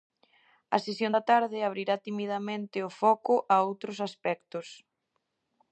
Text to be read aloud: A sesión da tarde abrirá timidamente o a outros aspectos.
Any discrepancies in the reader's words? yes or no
yes